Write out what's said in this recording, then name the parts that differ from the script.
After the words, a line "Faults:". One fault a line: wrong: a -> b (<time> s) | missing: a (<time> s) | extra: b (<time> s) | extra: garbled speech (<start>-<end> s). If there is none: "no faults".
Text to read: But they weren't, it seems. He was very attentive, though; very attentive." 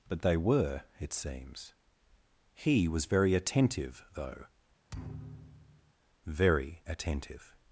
But they were, it seems. He was very attentive, though; very attentive."
Faults:
wrong: weren't -> were (0.4 s)